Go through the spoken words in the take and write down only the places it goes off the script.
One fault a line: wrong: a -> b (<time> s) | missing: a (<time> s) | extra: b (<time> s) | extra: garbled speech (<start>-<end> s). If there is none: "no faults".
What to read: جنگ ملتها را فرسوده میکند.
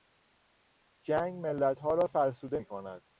no faults